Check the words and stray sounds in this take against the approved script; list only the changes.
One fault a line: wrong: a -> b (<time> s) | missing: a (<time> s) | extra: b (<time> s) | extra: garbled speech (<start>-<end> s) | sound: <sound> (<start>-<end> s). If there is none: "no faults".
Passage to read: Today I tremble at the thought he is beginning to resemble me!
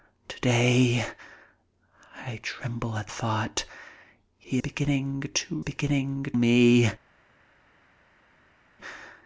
missing: the (3.1 s)
missing: is (4.6 s)
wrong: resemble -> beginning (5.6 s)